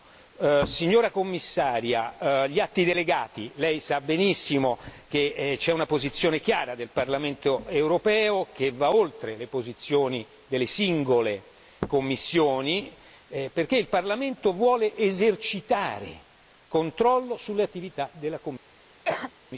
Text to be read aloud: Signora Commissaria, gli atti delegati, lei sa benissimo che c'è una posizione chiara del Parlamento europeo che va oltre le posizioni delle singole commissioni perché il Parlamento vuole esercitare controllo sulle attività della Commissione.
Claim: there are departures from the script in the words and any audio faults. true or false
true